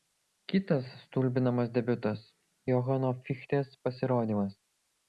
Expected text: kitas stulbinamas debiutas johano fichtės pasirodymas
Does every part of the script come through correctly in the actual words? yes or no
yes